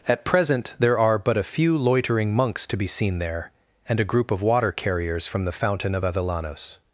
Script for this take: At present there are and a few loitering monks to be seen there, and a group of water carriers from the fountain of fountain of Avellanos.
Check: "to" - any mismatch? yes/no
no